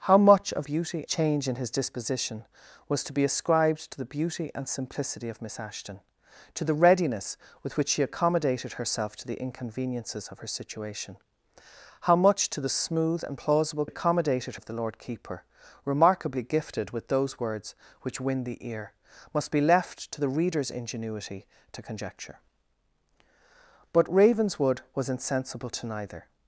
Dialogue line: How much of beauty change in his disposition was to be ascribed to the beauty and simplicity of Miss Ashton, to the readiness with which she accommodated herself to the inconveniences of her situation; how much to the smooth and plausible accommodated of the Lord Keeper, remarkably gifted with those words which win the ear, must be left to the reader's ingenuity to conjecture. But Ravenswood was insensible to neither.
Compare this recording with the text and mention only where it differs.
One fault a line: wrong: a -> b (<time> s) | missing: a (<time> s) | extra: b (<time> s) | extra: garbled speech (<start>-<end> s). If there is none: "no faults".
no faults